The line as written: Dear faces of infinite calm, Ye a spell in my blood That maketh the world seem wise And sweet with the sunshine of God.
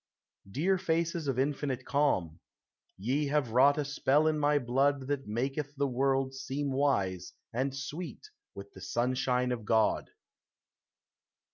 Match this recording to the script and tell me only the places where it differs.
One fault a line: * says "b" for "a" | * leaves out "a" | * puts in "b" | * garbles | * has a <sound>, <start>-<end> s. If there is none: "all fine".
* puts in "have wrought"